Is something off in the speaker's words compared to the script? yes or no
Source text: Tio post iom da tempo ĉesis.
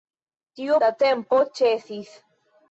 yes